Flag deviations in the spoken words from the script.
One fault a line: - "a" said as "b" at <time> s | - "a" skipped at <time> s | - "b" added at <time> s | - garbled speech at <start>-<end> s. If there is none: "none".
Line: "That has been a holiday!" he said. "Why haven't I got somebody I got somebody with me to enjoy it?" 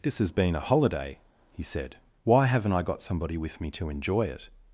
- "That" said as "This" at 0.0 s
- "I got somebody" skipped at 3.4 s